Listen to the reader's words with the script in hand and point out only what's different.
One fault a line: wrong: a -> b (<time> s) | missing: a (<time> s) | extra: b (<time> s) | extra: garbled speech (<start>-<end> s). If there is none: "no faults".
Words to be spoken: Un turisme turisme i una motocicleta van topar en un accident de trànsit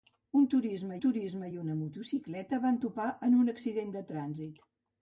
no faults